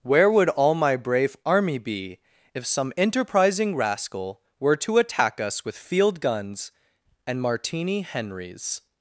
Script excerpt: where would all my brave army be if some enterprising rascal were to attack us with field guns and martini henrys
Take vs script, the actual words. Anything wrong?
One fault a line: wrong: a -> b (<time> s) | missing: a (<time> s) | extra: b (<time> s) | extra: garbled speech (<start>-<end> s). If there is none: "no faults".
no faults